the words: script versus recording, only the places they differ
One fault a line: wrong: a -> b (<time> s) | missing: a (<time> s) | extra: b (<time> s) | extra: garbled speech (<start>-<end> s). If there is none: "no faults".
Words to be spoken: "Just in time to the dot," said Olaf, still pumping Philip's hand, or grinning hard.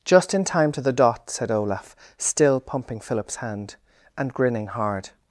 wrong: or -> and (4.2 s)